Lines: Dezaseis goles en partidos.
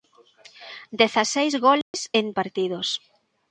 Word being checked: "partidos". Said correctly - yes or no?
yes